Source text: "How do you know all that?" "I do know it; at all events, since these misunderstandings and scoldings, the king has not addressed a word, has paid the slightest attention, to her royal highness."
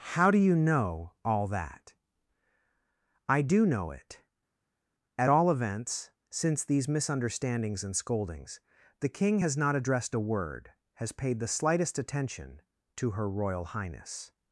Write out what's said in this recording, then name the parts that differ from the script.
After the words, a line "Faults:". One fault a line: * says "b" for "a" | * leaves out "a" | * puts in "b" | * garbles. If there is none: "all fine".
"How do you know all that?" "I do know it; at all events, since these misunderstandings and scoldings, the king has not addressed a word, has paid the slightest attention, to her royal highness."
Faults:
all fine